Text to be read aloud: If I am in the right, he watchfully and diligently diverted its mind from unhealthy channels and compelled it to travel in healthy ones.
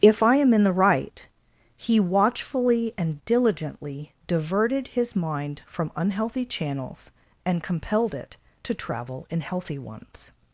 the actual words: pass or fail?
fail